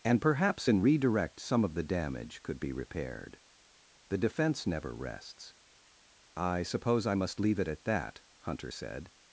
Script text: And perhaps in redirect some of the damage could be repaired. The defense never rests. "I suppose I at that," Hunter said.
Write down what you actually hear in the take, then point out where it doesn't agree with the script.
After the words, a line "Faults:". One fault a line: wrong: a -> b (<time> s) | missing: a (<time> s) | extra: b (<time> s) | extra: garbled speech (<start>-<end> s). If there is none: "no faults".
And perhaps in redirect some of the damage could be repaired. The defense never rests. "I suppose I must leave it at that," Hunter said.
Faults:
extra: must leave it (7.1 s)